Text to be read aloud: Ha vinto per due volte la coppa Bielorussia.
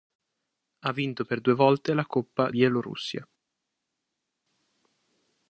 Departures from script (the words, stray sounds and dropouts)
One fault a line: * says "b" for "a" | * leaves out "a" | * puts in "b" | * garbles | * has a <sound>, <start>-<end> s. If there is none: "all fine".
all fine